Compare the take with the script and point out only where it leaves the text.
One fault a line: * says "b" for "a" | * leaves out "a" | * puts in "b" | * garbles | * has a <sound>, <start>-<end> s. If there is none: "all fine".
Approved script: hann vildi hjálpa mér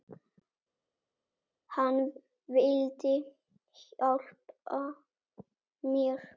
all fine